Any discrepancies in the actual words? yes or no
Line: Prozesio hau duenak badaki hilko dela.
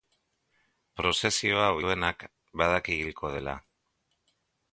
no